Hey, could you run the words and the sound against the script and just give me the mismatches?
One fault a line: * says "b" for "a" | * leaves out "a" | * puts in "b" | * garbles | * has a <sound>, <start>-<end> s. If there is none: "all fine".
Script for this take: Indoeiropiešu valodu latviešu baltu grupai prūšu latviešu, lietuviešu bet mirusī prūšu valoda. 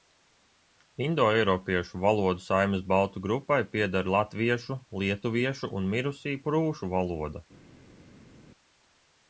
* says "saimes" for "latviešu"
* says "pieder" for "prūšu"
* says "un" for "bet"